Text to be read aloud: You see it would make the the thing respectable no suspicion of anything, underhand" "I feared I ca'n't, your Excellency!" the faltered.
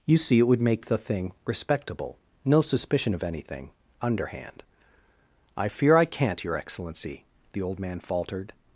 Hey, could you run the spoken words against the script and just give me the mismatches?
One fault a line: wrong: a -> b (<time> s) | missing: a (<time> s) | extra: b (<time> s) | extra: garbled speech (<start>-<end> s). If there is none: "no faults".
missing: the (1.0 s)
wrong: feared -> fear (5.7 s)
extra: old man (7.6 s)